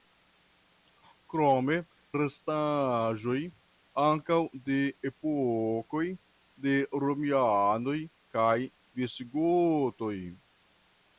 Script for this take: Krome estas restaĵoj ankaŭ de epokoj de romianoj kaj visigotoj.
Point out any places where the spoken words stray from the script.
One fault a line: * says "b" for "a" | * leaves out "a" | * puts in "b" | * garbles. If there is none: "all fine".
* leaves out "estas"